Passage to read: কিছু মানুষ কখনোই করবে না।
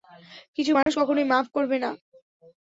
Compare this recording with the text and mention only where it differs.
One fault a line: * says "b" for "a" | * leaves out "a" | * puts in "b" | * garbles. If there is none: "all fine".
* puts in "মাফ"